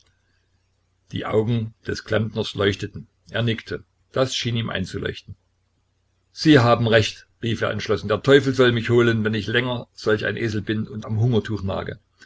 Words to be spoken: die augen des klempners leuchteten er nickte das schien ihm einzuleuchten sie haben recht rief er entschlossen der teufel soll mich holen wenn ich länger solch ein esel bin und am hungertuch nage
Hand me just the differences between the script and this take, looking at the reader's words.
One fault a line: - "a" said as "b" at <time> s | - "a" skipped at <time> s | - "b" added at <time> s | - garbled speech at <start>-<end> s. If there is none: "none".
none